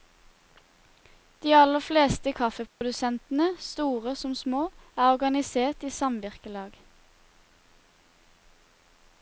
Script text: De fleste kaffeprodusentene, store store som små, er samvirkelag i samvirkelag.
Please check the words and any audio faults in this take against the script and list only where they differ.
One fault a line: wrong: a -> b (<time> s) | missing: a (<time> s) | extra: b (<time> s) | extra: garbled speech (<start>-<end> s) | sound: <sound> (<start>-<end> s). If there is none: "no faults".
extra: aller (1.6 s)
sound: dropout (2.7-2.8 s)
missing: store (4.1 s)
wrong: samvirkelag -> organisert (5.2 s)